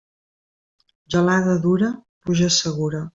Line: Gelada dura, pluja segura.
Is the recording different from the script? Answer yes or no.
no